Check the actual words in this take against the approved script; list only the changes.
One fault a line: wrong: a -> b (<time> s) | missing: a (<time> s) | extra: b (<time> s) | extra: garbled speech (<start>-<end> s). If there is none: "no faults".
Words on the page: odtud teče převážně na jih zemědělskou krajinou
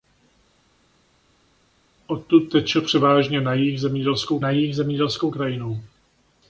extra: na jih zemědělskou (4.4 s)